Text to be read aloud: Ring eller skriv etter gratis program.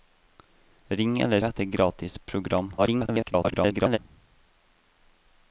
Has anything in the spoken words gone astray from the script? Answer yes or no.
yes